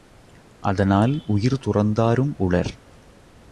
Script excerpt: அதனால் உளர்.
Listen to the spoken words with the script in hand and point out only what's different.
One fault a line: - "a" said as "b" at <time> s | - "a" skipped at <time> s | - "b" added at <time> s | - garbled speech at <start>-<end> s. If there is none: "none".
- "உயிர் துறந்தாரும்" added at 1.3 s